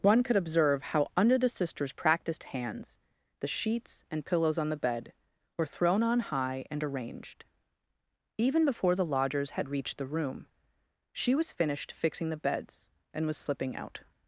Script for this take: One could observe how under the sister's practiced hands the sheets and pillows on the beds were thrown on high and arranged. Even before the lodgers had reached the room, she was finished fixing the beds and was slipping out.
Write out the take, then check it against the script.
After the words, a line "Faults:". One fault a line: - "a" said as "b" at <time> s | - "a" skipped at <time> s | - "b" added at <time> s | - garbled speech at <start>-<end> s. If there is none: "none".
One could observe how under the sister's practiced hands the sheets and pillows on the bed were thrown on high and arranged. Even before the lodgers had reached the room, she was finished fixing the beds and was slipping out.
Faults:
- "beds" said as "bed" at 4.8 s